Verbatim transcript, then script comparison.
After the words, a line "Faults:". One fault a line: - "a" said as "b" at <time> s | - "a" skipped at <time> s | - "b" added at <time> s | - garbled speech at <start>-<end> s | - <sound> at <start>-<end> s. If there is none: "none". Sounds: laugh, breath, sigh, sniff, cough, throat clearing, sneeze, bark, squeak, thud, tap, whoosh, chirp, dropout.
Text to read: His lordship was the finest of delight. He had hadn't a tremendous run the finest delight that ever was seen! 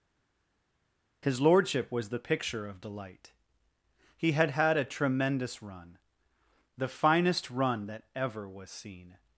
His lordship was the picture of delight. He had had a tremendous run the finest run that ever was seen!
Faults:
- "finest" said as "picture" at 2.2 s
- "hadn't" said as "had" at 4.5 s
- "delight" said as "run" at 7.5 s